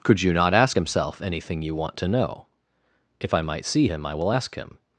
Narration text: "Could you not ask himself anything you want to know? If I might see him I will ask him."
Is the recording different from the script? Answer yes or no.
no